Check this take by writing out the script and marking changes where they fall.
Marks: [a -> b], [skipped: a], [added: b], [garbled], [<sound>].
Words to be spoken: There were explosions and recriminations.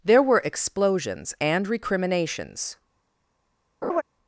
There were explosions and recriminations. [laugh]